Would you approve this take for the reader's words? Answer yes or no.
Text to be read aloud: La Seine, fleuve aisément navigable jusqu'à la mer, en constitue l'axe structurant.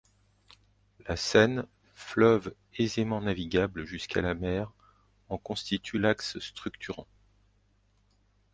yes